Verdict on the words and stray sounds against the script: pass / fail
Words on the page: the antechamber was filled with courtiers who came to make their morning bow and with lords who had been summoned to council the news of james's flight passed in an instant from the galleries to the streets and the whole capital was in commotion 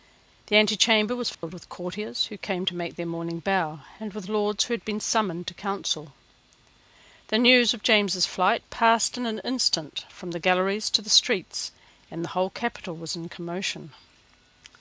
fail